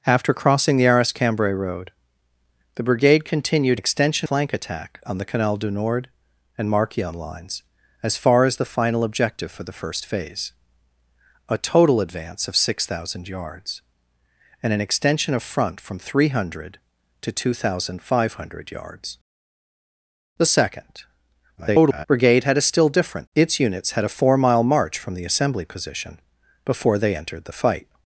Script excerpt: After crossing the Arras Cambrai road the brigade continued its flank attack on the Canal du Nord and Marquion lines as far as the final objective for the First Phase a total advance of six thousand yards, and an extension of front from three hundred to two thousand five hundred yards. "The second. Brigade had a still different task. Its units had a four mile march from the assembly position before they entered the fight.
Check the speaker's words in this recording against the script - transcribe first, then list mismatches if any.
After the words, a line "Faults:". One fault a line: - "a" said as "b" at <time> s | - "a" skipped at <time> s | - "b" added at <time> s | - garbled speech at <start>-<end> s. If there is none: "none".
After crossing the Arras Cambrai road the brigade continued extension flank attack on the Canal du Nord and Marquion lines as far as the final objective for the First Phase a total advance of six thousand yards, and an extension of front from three hundred to two thousand five hundred yards. "The second. [garbled] Brigade had a still different. Its units had a four mile march from the assembly position before they entered the fight.
Faults:
- "its" said as "extension" at 3.7 s
- garbled speech at 21.6-22.1 s
- "task" skipped at 23.3 s